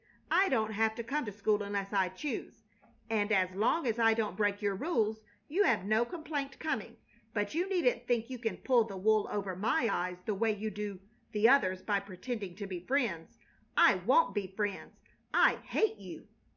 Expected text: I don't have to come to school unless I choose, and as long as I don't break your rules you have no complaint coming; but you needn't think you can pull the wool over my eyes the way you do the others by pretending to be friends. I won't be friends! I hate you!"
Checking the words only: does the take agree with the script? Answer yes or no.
yes